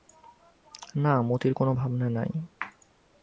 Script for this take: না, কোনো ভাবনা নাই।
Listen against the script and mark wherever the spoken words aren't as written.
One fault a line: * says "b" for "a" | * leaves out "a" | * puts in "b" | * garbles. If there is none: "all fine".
* puts in "মতির"